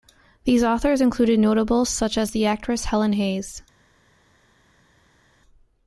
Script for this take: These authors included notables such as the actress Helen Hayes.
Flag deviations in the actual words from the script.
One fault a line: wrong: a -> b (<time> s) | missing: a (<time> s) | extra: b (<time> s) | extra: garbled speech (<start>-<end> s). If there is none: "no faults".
no faults